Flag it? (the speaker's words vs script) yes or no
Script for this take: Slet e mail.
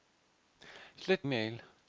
no